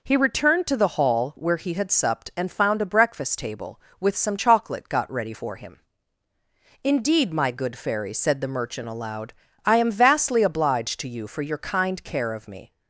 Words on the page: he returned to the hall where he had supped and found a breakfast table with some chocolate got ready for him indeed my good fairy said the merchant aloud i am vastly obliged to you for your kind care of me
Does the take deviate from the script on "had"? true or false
false